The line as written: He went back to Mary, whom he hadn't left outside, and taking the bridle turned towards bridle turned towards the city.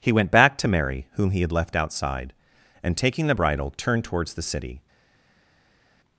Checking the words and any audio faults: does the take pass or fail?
fail